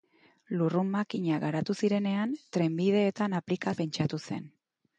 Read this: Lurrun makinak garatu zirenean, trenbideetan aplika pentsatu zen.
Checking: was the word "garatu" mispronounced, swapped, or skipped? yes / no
no